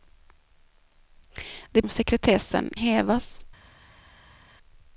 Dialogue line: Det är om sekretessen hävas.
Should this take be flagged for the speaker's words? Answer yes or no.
no